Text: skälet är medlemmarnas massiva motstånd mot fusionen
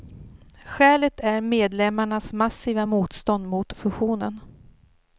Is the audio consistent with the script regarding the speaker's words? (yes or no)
yes